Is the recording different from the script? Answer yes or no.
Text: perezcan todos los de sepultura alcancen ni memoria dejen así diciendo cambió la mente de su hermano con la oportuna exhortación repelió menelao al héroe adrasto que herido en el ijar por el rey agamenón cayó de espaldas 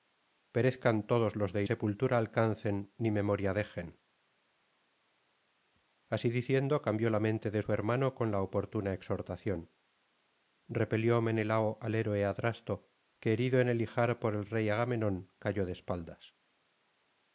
no